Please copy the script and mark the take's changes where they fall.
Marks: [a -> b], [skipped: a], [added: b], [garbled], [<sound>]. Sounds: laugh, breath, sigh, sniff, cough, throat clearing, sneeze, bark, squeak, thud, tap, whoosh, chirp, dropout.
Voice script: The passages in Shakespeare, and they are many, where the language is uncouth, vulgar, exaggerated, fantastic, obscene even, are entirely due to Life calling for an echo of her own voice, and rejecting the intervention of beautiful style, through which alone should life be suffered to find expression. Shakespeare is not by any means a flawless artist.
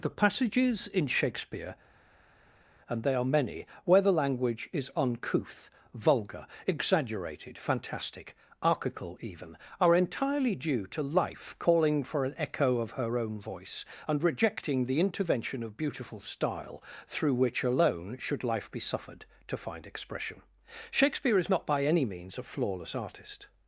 The passages in Shakespeare, and they are many, where the language is uncouth, vulgar, exaggerated, fantastic, [obscene -> archical] even, are entirely due to Life calling for an echo of her own voice, and rejecting the intervention of beautiful style, through which alone should life be suffered to find expression. Shakespeare is not by any means a flawless artist.